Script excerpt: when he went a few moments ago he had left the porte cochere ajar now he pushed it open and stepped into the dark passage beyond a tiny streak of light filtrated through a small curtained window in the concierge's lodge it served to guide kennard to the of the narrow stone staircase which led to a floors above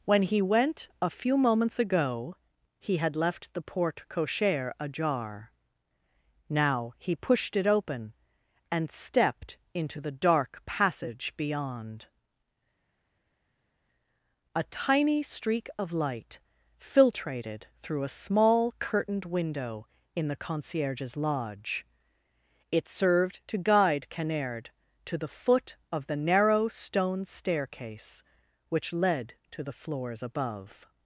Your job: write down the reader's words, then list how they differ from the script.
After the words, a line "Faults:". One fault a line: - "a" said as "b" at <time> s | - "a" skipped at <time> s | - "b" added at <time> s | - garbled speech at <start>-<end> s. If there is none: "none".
when he went a few moments ago he had left the porte cochere ajar now he pushed it open and stepped into the dark passage beyond a tiny streak of light filtrated through a small curtained window in the concierge's lodge it served to guide kennard to the foot of the narrow stone staircase which led to the floors above
Faults:
- "foot" added at 25.3 s
- "a" said as "the" at 29.6 s